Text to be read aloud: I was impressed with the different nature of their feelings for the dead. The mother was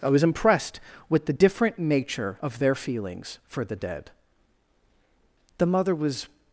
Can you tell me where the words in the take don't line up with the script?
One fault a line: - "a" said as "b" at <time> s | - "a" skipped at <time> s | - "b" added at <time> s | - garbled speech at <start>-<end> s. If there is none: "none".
none